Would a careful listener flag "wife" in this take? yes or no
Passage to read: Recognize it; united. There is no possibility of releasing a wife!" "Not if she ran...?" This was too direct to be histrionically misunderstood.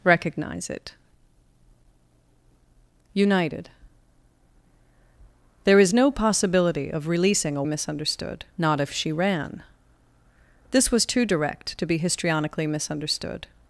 yes